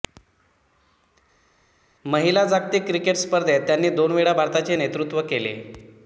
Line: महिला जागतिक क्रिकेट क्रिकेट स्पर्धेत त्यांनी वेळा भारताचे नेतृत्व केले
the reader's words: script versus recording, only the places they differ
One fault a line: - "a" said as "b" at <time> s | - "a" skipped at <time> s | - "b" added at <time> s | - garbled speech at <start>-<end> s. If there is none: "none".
- "क्रिकेट" skipped at 3.2 s
- "दोन" added at 3.9 s